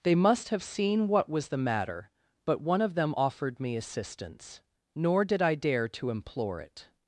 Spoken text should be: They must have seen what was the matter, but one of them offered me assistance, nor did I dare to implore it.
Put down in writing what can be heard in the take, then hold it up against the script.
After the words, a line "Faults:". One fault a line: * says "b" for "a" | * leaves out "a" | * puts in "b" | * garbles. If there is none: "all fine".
They must have seen what was the matter, but one of them offered me assistance, nor did I dare to implore it.
Faults:
all fine